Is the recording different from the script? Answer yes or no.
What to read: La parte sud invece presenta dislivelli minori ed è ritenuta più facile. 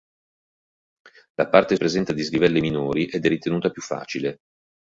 yes